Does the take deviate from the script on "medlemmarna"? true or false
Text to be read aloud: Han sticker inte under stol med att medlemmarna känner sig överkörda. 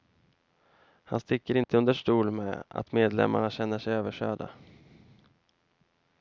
false